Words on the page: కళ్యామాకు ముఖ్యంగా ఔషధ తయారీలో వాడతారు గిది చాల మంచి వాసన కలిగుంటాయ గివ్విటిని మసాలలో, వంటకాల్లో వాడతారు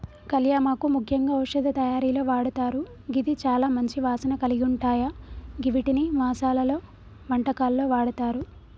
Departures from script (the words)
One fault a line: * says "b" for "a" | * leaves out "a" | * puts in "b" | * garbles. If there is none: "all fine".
all fine